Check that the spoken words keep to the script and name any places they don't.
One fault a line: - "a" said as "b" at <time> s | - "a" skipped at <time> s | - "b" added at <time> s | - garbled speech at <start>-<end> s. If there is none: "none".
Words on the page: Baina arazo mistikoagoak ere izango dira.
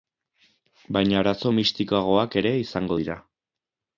none